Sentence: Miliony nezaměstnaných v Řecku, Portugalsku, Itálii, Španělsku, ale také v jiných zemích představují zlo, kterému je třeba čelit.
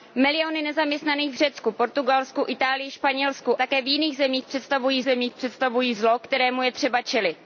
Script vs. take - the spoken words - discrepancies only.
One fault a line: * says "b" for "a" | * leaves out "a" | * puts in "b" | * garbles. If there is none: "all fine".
* leaves out "ale"
* puts in "zemích představují"